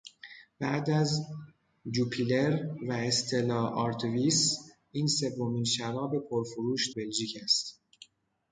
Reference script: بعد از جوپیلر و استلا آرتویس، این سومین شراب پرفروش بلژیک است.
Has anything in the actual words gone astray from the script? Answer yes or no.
no